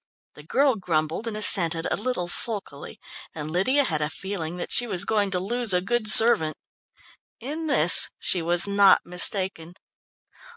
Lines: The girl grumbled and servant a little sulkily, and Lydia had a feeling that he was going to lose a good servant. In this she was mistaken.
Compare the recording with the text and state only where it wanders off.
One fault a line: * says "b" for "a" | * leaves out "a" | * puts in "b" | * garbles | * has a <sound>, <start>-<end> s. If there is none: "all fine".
* says "assented" for "servant"
* says "she" for "he"
* puts in "not"